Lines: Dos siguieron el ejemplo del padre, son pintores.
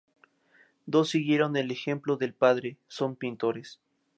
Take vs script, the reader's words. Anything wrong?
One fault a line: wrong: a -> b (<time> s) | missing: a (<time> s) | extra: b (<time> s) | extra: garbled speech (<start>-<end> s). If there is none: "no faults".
no faults